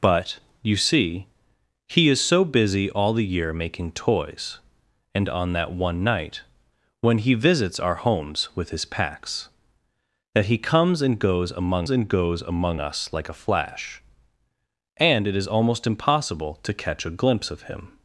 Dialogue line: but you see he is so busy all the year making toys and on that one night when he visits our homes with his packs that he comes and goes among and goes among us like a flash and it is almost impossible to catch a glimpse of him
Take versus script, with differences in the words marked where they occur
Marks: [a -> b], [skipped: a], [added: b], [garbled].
but you see he is so busy all the year making toys and on that one night when he visits our homes with his packs that he comes and goes among and goes among us like a flash and it is almost impossible to catch a glimpse of him